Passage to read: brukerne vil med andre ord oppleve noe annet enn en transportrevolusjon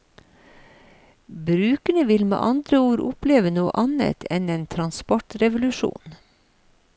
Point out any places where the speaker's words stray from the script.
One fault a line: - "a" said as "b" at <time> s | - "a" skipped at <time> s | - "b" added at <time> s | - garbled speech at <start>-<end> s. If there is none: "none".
none